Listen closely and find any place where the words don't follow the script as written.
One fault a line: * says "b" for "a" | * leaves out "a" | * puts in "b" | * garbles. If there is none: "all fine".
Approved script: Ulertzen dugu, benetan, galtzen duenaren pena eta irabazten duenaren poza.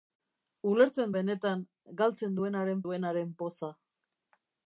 * leaves out "dugu"
* leaves out "pena eta irabazten"